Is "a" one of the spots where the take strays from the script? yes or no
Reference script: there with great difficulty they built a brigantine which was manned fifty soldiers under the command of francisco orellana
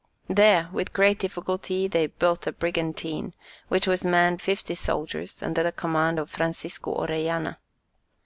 no